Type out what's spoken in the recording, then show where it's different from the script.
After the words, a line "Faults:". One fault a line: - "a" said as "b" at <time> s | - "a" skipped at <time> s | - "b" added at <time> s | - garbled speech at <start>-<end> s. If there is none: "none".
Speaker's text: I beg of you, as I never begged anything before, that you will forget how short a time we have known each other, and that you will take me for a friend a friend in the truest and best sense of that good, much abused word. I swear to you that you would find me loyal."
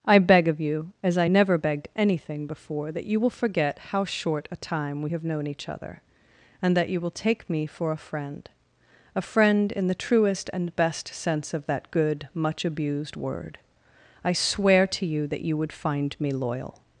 I beg of you, as I never begged anything before, that you will forget how short a time we have known each other, and that you will take me for a friend a friend in the truest and best sense of that good, much abused word. I swear to you that you would find me loyal."
Faults:
none